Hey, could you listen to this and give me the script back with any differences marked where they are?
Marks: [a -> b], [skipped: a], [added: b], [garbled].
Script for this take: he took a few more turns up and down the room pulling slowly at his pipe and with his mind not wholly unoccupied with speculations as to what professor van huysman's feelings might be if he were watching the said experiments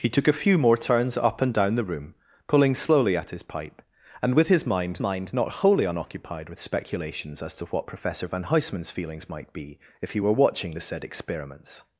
he took a few more turns up and down the room pulling slowly at his pipe and with his mind [added: mind] not wholly unoccupied with speculations as to what professor van huysman's feelings might be if he were watching the said experiments